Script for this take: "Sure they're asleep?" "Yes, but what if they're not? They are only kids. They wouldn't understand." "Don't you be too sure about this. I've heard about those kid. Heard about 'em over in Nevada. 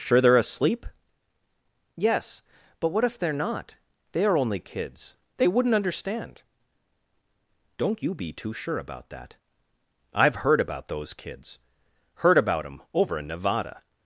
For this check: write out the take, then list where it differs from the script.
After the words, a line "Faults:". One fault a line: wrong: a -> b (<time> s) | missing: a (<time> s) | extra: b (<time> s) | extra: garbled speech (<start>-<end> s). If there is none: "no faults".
"Sure they're asleep?" "Yes, but what if they're not? They are only kids. They wouldn't understand." "Don't you be too sure about that. I've heard about those kids. Heard about 'em over in Nevada.
Faults:
wrong: this -> that (9.1 s)
wrong: kid -> kids (11.1 s)